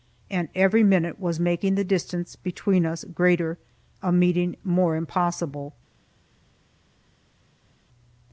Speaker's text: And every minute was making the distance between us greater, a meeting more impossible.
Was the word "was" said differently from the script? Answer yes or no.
no